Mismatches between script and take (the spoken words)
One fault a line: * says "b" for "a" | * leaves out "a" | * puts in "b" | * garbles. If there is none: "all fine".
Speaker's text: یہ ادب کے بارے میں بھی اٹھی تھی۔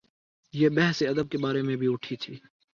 * puts in "بحث"